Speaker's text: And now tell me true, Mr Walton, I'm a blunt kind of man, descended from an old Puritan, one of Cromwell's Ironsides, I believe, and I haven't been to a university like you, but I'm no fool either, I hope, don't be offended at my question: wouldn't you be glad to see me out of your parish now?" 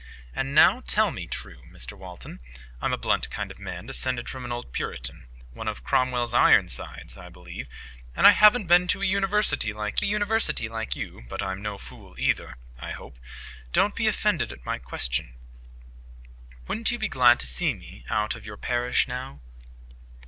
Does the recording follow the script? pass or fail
fail